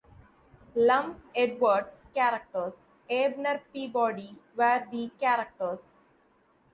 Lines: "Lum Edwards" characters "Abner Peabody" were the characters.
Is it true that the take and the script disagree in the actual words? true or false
false